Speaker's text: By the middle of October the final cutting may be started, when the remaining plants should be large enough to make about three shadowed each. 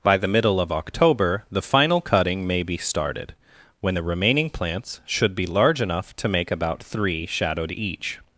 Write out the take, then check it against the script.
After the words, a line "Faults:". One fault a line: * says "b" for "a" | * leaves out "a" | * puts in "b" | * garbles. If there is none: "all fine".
By the middle of October the final cutting may be started, when the remaining plants should be large enough to make about three shadowed each.
Faults:
all fine